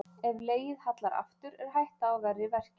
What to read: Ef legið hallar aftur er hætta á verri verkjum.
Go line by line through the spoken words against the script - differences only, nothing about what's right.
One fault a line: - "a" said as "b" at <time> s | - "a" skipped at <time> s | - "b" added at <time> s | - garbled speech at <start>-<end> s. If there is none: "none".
none